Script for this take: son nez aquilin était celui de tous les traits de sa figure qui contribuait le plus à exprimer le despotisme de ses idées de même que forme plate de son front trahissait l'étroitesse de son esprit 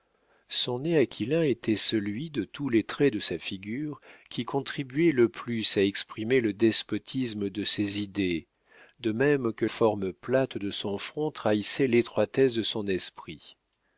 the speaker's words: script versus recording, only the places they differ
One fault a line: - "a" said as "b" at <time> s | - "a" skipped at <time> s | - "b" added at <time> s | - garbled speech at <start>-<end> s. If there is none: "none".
none